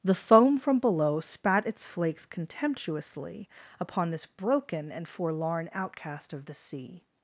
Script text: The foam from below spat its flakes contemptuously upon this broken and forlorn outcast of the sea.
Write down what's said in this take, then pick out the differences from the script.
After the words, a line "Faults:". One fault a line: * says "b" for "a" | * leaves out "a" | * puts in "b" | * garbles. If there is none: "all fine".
The foam from below spat its flakes contemptuously upon this broken and forlorn outcast of the sea.
Faults:
all fine